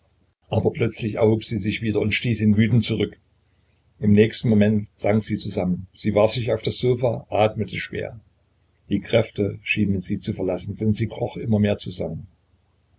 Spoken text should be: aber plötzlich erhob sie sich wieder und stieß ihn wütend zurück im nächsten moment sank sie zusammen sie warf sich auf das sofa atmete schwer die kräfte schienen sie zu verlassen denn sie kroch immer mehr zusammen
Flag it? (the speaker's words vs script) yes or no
no